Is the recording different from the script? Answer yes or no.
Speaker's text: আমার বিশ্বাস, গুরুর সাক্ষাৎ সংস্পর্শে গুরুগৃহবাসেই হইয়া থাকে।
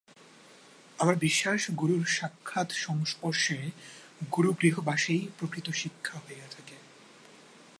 yes